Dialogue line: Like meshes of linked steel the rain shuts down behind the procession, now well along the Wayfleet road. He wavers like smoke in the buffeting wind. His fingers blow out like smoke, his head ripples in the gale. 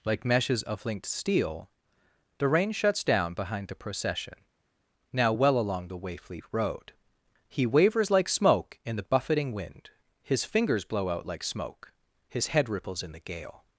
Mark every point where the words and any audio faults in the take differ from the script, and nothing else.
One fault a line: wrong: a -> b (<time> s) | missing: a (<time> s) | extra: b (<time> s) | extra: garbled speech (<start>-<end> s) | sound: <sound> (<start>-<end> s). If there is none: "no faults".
no faults